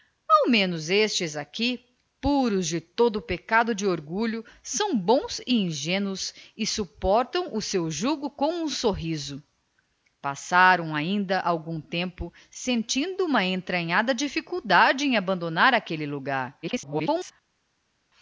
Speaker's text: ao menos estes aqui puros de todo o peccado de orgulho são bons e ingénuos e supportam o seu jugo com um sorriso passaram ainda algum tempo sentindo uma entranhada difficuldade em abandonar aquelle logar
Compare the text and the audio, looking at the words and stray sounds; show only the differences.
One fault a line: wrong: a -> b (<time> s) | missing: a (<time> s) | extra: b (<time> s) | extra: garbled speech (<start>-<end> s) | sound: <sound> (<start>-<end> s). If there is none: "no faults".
extra: garbled speech (16.6-17.3 s)